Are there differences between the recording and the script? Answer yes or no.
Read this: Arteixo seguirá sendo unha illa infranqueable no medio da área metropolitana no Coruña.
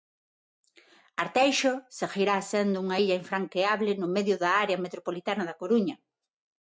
yes